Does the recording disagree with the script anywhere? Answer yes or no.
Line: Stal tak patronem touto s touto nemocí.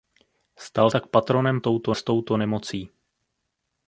no